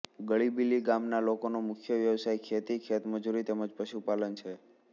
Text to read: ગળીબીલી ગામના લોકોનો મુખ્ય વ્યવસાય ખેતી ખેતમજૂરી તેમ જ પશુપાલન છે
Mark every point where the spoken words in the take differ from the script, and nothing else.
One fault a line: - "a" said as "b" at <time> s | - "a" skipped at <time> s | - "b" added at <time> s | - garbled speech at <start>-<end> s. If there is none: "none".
none